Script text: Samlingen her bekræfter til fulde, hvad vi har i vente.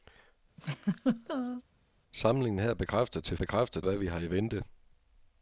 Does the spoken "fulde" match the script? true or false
false